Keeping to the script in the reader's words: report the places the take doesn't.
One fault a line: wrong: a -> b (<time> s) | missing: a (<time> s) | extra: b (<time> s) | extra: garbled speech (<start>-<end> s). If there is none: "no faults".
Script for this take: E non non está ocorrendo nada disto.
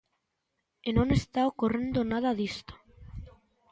missing: non (1.1 s)